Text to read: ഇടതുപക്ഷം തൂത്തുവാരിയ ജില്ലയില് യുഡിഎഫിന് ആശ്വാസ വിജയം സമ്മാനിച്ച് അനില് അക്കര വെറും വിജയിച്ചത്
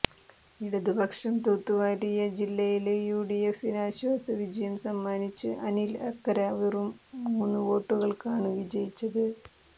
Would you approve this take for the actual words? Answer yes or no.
no